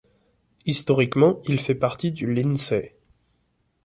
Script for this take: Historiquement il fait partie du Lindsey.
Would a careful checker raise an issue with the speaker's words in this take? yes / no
no